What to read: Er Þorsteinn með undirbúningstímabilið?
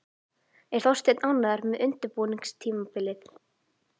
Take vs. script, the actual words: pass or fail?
fail